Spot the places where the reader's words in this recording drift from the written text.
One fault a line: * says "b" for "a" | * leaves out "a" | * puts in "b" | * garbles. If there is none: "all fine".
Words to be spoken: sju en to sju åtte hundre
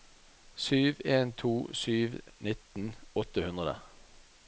* puts in "nitten"